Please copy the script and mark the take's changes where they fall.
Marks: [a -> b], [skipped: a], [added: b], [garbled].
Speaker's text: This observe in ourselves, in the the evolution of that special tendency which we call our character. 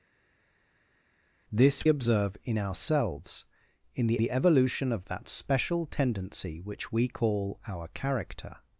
This observe in ourselves, in the the evolution of that special tendency which we call our character.